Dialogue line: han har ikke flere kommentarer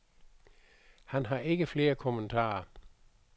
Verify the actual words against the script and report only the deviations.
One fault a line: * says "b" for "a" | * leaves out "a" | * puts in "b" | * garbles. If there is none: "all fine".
all fine